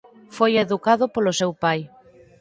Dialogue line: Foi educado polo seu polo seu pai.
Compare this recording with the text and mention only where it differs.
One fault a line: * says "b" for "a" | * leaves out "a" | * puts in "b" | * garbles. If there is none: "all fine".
* leaves out "polo seu"